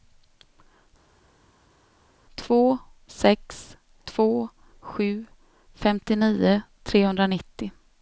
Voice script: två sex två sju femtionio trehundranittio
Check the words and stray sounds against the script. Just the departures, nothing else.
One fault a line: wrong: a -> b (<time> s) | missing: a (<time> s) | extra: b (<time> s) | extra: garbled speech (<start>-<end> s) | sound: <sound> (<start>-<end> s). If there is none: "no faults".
no faults